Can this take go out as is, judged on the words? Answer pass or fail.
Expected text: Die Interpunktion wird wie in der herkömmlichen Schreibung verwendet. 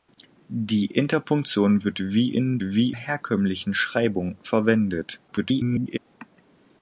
fail